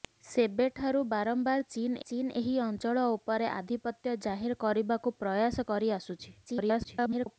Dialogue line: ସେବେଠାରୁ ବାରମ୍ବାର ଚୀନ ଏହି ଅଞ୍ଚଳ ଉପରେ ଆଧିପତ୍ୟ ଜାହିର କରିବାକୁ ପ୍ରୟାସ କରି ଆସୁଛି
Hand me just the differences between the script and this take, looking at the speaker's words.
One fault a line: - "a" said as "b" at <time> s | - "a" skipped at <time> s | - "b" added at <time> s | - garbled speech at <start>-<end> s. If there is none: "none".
- "ଚୀନ" added at 2.0 s
- garbled speech at 6.5-7.4 s